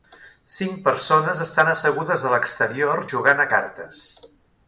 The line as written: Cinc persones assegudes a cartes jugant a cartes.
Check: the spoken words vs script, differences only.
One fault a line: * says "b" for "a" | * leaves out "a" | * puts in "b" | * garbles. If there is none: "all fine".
* puts in "estan"
* says "l'exterior" for "cartes"